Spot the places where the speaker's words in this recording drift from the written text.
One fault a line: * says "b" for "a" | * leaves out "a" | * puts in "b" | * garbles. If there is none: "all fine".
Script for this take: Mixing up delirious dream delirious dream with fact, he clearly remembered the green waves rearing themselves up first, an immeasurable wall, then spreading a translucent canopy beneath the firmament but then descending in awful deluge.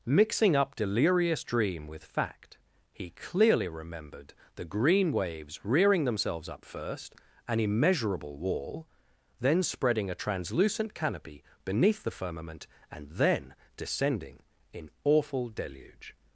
* leaves out "delirious dream"
* says "and" for "but"